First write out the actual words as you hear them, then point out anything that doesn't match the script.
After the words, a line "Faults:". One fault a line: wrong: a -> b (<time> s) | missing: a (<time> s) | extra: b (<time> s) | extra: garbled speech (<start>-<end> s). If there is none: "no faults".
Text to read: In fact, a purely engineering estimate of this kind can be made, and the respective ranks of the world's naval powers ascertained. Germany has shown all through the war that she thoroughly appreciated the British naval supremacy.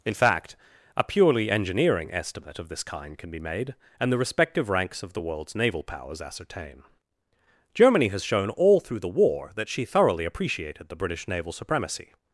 In fact, a purely engineering estimate of this kind can be made, and the respective ranks of the world's naval powers ascertain. Germany has shown all through the war that she thoroughly appreciated the British naval supremacy.
Faults:
wrong: ascertained -> ascertain (6.2 s)